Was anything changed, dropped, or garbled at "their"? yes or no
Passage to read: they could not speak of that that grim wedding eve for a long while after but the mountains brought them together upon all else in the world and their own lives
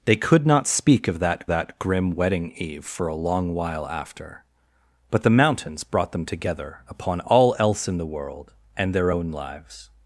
no